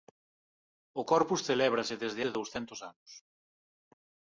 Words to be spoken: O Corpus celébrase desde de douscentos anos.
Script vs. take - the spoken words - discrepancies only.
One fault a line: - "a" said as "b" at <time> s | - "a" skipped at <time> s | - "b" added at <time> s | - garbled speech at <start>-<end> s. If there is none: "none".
none